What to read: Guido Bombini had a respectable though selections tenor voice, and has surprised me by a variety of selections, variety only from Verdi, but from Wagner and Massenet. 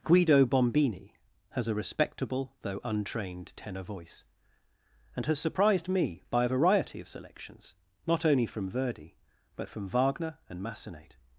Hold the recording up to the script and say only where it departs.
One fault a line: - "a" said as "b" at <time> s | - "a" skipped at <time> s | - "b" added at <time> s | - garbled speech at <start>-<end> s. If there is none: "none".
- "had" said as "has" at 1.5 s
- "selections" said as "untrained" at 2.8 s
- "variety" said as "not" at 8.1 s